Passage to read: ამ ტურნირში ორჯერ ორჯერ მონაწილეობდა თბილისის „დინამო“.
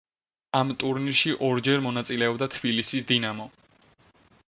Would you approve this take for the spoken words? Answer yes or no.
no